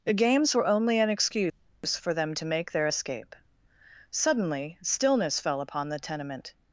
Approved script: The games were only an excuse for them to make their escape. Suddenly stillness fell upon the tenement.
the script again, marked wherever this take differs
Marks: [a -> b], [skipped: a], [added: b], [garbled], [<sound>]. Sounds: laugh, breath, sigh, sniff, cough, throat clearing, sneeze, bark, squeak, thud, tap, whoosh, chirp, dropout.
The games were only an excuse for them to make their escape. Suddenly stillness fell upon the tenement.